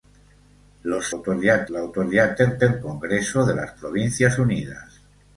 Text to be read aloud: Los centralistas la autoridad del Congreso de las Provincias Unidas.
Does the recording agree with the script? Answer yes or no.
no